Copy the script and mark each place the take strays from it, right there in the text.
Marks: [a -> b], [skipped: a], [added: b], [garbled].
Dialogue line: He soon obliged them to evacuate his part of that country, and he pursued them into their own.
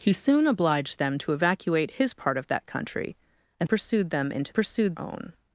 He soon obliged them to evacuate his part of that country, and [skipped: he] pursued them into [their -> pursued] own.